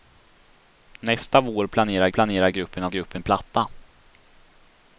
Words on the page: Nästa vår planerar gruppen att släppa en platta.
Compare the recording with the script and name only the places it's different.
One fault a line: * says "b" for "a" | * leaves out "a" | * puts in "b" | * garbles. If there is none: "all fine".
* puts in "planerar"
* says "gruppen" for "släppa"